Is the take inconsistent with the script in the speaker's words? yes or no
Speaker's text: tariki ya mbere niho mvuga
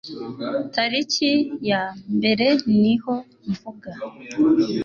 no